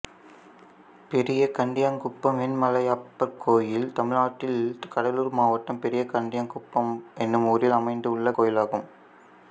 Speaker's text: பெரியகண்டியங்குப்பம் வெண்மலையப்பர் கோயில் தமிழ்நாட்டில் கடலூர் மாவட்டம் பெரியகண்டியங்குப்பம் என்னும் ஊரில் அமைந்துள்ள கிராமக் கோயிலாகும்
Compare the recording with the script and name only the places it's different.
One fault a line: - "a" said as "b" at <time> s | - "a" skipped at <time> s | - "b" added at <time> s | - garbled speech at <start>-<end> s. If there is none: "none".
- "கிராமக்" skipped at 8.3 s